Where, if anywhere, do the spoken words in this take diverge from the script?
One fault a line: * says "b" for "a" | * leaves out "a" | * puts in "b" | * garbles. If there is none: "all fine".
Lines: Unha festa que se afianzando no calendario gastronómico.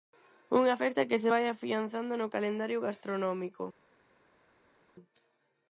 * puts in "vai"